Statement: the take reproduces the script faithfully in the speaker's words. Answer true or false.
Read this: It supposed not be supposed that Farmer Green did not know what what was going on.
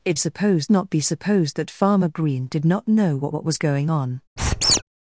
true